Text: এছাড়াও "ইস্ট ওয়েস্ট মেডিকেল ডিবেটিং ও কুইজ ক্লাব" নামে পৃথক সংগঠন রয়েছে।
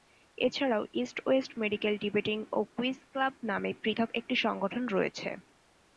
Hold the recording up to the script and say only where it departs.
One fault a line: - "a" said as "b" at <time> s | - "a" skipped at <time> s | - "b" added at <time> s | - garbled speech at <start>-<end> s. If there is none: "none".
- "একটি" added at 4.1 s